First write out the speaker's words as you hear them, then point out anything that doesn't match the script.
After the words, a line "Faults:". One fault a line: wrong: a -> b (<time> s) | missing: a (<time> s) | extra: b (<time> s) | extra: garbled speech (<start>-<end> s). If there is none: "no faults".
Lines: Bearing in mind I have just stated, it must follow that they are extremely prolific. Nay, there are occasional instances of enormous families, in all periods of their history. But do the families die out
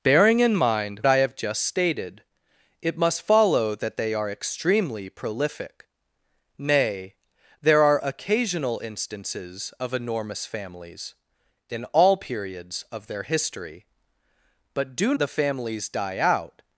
Bearing in mind I have just stated, it must follow that they are extremely prolific. Nay, there are occasional instances of enormous families, in all periods of their history. But do the families die out
Faults:
no faults